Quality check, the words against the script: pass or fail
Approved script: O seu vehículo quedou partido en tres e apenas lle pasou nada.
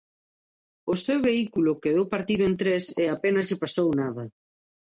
pass